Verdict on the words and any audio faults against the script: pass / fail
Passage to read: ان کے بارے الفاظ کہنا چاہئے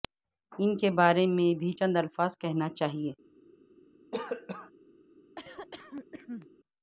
fail